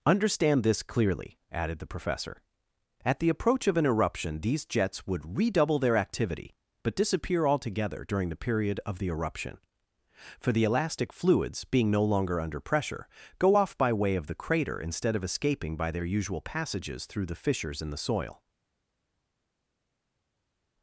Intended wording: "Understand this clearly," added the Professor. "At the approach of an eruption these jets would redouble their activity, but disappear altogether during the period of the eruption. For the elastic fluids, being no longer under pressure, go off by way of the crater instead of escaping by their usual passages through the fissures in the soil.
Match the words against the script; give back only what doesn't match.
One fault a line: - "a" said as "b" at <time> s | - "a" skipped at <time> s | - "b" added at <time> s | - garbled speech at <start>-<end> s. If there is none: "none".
none